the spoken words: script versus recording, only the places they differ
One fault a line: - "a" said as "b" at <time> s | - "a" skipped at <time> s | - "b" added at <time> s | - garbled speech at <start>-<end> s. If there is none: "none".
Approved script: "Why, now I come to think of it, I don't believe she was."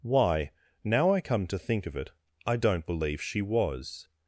none